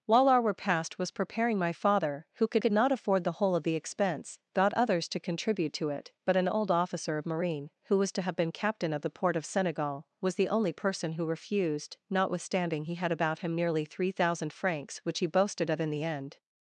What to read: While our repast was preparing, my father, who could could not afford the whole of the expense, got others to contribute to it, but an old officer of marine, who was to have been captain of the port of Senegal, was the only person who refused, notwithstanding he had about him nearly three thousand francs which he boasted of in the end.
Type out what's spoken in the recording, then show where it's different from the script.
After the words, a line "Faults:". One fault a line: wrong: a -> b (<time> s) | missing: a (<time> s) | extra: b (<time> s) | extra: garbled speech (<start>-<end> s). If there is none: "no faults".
While our repast was preparing, my father, who could could not afford the whole of the expense, got others to contribute to it, but an old officer of marine, who was to have been captain of the port of Senegal, was the only person who refused, notwithstanding he had about him nearly three thousand francs which he boasted of in the end.
Faults:
no faults